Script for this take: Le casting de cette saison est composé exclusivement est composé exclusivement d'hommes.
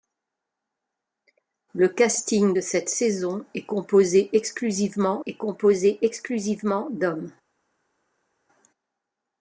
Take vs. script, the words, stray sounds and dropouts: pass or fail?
pass